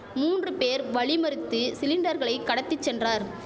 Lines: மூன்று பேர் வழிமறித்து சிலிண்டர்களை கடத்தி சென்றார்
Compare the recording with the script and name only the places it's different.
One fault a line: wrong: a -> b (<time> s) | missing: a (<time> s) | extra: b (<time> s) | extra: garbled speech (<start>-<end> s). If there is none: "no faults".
no faults